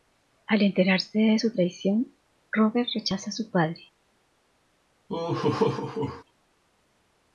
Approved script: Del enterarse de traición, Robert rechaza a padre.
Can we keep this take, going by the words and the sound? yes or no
no